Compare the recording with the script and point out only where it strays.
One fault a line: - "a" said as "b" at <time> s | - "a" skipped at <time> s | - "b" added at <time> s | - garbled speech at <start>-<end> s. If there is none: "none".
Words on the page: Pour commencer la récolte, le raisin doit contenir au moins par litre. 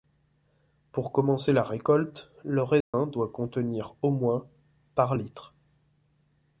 none